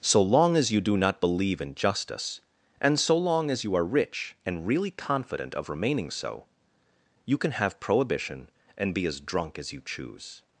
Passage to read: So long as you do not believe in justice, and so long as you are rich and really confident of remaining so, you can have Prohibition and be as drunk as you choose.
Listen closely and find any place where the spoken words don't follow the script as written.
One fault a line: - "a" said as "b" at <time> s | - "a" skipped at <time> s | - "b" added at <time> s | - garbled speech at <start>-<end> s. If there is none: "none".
none